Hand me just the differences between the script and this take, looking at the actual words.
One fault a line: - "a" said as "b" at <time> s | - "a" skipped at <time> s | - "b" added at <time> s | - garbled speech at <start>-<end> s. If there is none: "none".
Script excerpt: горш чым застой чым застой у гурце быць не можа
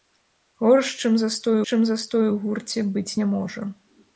none